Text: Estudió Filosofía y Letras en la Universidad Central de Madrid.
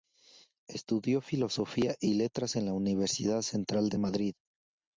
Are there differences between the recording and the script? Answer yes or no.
no